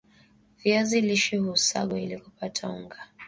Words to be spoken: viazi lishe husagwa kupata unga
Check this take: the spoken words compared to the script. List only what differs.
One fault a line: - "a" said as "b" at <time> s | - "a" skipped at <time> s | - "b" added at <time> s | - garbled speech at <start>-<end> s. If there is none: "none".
- "ili" added at 2.0 s